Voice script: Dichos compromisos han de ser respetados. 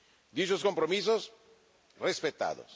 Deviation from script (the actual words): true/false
true